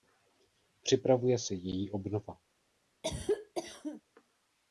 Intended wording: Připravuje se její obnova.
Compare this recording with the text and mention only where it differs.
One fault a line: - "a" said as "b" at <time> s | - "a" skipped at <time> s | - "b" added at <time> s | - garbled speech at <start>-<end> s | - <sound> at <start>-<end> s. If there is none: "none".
- cough at 3.0-4.0 s